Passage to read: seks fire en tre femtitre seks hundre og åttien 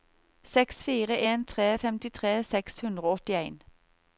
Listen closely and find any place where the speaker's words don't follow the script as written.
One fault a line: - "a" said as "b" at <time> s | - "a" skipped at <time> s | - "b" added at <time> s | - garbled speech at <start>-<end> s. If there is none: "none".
none